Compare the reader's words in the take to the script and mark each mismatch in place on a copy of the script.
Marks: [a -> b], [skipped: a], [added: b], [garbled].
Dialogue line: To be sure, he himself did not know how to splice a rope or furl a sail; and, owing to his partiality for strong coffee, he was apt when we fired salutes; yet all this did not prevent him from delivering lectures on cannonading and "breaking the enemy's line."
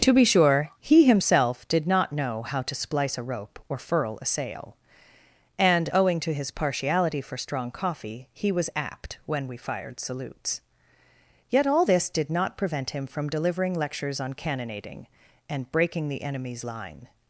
To be sure, he himself did not know how to splice a rope or furl a sail; and, owing to his partiality for strong coffee, he was apt when we fired salutes; yet all this did not prevent him from delivering lectures on cannonading and "breaking the enemy's line."